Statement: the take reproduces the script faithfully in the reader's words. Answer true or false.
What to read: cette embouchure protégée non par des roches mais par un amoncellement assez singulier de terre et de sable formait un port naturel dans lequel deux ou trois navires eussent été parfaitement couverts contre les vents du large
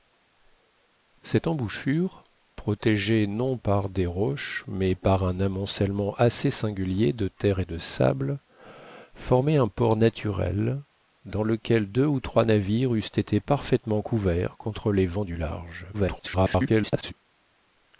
false